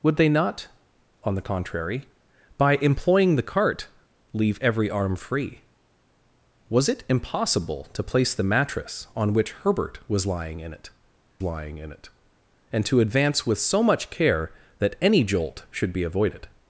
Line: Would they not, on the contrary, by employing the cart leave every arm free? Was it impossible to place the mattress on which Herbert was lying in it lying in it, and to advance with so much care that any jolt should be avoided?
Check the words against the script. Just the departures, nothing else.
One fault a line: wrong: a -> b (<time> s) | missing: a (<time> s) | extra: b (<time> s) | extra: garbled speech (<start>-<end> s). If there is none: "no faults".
no faults